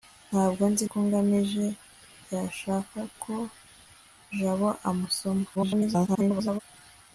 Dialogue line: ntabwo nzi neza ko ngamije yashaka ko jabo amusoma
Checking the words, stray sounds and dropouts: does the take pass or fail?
fail